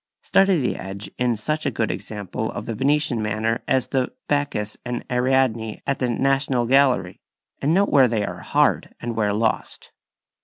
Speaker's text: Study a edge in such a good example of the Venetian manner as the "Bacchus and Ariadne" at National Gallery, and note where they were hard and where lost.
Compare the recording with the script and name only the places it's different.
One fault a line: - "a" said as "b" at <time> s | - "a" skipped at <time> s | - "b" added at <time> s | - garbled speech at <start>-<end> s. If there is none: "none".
- "a" said as "the" at 0.6 s
- "the" added at 6.0 s
- "were" said as "are" at 8.2 s